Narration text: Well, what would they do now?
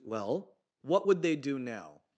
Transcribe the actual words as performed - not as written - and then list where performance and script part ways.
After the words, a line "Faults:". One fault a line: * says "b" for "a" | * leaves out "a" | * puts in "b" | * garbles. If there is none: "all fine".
Well, what would they do now?
Faults:
all fine